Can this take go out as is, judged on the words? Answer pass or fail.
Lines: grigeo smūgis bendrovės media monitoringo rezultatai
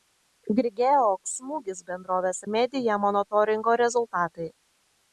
pass